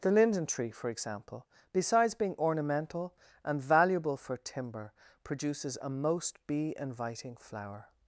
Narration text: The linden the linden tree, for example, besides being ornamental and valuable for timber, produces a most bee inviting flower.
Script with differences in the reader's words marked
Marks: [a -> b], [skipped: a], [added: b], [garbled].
The linden [skipped: the linden] tree, for example, besides being ornamental and valuable for timber, produces a most bee inviting flower.